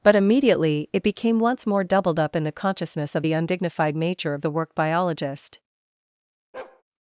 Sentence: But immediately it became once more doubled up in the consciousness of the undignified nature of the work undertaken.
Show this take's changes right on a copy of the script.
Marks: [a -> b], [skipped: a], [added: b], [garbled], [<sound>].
But immediately it became once more doubled up in the consciousness of the undignified nature of the work [undertaken. -> biologist] [bark]